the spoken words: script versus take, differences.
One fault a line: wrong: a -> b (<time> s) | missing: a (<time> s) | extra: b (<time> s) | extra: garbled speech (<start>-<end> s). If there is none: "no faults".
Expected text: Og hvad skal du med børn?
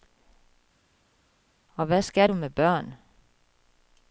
no faults